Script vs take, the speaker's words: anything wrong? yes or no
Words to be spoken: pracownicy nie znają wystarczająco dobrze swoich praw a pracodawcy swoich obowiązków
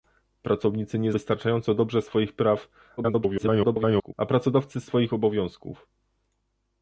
yes